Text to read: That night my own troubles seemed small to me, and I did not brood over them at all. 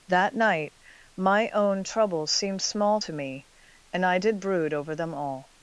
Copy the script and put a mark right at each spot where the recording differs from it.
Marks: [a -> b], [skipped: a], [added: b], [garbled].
That night my own troubles seemed small to me, and I did [skipped: not] brood over them [skipped: at] all.